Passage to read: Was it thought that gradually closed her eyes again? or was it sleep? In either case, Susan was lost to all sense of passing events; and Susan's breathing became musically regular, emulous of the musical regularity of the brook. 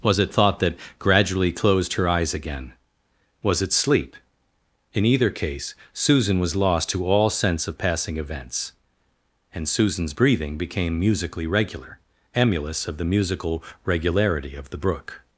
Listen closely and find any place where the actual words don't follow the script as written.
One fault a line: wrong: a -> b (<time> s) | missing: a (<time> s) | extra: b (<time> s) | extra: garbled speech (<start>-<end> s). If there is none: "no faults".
missing: or (2.7 s)